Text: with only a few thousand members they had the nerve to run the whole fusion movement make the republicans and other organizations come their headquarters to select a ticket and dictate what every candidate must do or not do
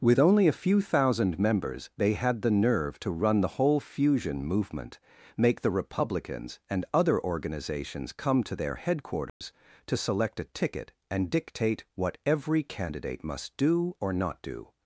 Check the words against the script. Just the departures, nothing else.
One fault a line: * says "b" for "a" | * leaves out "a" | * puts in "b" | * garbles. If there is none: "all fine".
* puts in "to"